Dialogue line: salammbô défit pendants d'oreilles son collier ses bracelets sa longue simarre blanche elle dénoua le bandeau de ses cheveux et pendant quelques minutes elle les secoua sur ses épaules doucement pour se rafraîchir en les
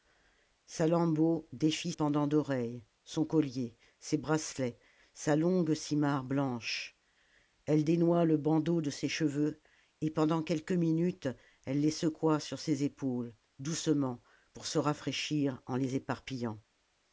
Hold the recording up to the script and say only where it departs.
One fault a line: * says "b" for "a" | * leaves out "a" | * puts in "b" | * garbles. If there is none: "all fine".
all fine